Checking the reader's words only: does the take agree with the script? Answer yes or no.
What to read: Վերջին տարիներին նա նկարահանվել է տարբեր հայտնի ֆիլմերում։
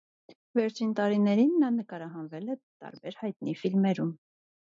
yes